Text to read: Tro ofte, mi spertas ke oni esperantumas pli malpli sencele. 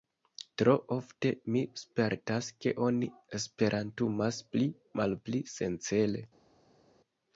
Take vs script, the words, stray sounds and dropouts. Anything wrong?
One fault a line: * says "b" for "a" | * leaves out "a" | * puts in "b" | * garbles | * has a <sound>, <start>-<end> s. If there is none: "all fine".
all fine